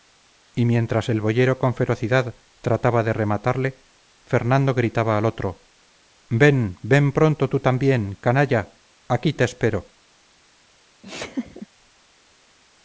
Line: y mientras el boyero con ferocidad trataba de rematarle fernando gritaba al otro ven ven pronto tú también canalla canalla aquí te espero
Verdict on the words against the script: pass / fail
fail